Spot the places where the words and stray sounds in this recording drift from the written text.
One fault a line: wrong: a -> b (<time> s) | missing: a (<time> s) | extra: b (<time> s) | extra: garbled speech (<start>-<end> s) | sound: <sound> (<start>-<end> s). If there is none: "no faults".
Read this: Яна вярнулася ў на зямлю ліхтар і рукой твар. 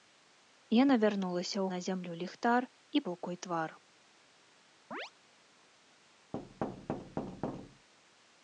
sound: chirp (4.9-5.1 s)
sound: thud (6.3-7.9 s)